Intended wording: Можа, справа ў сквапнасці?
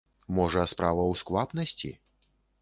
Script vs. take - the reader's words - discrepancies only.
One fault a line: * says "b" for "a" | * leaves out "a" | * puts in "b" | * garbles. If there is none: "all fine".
all fine